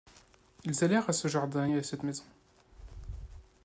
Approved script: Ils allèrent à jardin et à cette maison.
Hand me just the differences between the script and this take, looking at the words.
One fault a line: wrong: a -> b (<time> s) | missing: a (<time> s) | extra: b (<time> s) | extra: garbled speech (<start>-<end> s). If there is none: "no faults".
extra: ce (1.1 s)